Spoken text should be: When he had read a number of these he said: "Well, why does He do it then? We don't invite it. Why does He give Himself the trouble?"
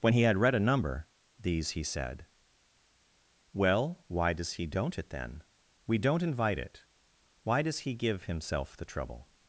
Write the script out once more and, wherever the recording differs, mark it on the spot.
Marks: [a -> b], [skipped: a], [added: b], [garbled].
When he had read a number [skipped: of] these he said: "Well, why does He [do -> don't] it then? We don't invite it. Why does He give Himself the trouble?"